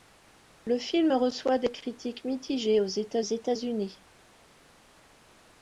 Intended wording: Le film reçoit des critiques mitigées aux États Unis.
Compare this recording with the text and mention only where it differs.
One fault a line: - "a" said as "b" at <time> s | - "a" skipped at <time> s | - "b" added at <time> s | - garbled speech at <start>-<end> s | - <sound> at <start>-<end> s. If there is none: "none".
- "États" added at 3.2 s